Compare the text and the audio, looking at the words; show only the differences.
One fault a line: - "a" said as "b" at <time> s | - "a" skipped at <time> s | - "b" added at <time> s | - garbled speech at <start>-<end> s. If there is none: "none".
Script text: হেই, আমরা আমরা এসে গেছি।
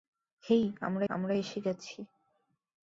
none